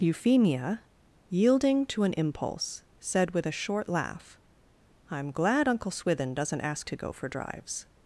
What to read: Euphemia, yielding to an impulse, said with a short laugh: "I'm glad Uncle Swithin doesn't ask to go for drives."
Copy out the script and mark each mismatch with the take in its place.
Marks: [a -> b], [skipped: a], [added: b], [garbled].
Euphemia, yielding to an impulse, said with a short laugh: "I'm glad Uncle Swithin doesn't ask to go for drives."